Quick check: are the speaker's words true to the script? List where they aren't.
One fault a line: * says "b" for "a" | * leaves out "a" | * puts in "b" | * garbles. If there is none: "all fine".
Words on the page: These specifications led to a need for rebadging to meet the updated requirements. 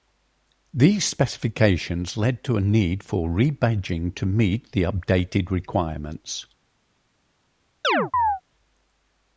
all fine